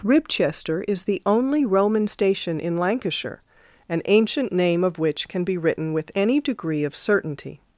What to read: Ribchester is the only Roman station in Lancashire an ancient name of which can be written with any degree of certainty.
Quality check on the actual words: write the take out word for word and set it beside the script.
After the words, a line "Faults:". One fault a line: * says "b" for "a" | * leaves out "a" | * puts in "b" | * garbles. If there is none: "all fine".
Ribchester is the only Roman station in Lancashire an ancient name of which can be written with any degree of certainty.
Faults:
all fine